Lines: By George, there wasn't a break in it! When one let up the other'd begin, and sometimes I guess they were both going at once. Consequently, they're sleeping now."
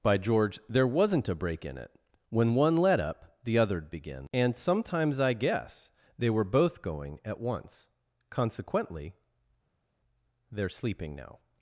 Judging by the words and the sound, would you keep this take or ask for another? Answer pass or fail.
pass